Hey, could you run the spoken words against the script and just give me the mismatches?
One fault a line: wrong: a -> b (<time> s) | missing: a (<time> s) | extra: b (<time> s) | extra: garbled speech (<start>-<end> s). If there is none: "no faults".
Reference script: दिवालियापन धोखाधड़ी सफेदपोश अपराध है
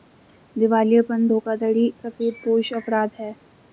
no faults